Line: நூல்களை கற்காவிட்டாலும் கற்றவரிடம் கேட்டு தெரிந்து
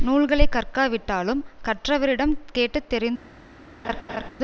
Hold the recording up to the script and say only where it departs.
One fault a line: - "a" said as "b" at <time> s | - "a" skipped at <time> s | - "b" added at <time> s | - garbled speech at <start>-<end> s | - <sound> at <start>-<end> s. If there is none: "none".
- laugh at 3.8-4.3 s